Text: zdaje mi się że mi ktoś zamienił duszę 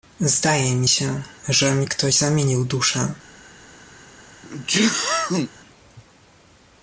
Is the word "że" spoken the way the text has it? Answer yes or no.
yes